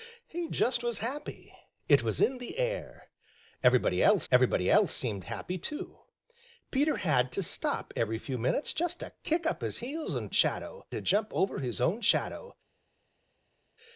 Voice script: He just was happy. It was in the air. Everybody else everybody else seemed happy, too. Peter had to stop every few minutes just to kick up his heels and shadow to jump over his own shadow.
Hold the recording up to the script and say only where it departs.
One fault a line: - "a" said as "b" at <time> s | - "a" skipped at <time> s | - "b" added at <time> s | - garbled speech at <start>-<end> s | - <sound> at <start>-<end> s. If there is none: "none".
none